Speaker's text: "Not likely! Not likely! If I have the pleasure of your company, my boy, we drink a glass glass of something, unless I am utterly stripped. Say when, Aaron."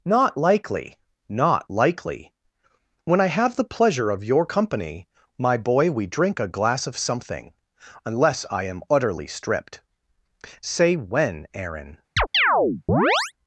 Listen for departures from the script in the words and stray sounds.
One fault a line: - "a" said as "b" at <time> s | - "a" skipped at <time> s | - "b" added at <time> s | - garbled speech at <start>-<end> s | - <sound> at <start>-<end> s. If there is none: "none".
- "If" said as "When" at 3.0 s
- "glass" skipped at 6.9 s
- chirp at 12.2-13.3 s